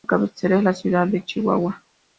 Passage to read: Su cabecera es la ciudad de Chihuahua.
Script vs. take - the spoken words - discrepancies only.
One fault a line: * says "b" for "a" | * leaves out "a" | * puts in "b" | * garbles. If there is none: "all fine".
all fine